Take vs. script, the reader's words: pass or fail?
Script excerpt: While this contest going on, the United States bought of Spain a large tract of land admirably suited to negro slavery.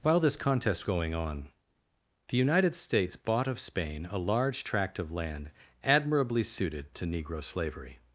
pass